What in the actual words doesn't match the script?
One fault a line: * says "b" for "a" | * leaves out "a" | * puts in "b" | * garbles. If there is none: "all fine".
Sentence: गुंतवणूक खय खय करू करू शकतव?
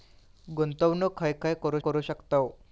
all fine